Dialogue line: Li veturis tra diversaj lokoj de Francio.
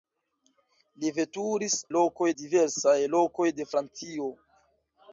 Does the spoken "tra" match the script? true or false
false